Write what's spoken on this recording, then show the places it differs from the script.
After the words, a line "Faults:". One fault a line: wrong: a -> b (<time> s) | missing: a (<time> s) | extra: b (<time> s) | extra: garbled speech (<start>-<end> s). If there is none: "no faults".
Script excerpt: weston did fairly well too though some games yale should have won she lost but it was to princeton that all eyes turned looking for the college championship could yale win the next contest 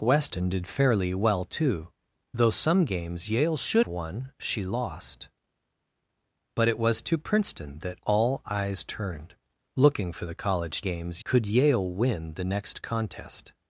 weston did fairly well too though some games yale should won she lost but it was to princeton that all eyes turned looking for the college games could yale win the next contest
Faults:
missing: have (3.9 s)
wrong: championship -> games (10.8 s)